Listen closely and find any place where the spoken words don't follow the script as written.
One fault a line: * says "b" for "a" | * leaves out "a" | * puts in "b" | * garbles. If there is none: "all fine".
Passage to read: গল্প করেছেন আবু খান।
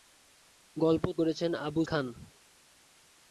all fine